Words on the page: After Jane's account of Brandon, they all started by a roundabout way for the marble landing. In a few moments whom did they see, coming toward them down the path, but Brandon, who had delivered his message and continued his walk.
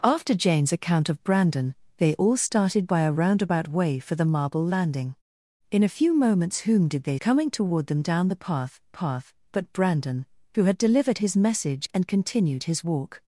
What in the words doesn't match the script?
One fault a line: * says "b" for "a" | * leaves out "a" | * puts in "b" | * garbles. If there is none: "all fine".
* leaves out "see"
* puts in "path"